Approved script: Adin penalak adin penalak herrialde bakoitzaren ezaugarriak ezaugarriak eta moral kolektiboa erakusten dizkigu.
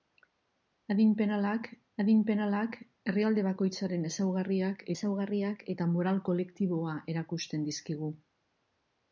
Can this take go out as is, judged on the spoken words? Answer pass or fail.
pass